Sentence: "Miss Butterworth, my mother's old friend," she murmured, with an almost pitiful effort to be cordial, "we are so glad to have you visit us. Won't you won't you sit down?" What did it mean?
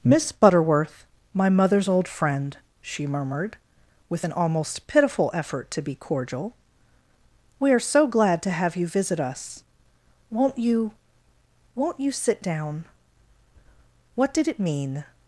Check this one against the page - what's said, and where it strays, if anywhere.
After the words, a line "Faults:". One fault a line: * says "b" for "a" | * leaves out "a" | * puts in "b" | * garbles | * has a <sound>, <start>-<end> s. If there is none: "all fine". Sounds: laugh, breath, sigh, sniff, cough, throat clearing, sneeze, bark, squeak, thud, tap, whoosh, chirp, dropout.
"Miss Butterworth, my mother's old friend," she murmured, with an almost pitiful effort to be cordial, "we are so glad to have you visit us. Won't you won't you sit down?" What did it mean?
Faults:
all fine